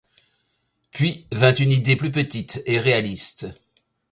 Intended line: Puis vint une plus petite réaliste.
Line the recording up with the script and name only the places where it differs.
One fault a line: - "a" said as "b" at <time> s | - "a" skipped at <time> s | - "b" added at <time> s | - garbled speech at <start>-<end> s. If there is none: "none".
- "idée" added at 1.7 s
- "et" added at 2.6 s